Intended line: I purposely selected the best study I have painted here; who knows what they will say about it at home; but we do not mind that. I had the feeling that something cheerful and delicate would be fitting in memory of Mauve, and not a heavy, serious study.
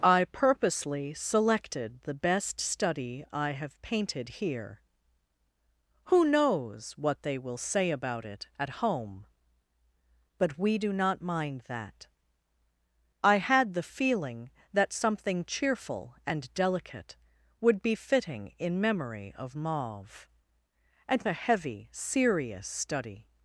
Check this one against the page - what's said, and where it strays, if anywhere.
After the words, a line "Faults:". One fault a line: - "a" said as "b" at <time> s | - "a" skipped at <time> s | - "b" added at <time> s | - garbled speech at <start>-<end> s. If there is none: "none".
I purposely selected the best study I have painted here; who knows what they will say about it at home; but we do not mind that. I had the feeling that something cheerful and delicate would be fitting in memory of Mauve, and a heavy, serious study.
Faults:
- "not" skipped at 21.3 s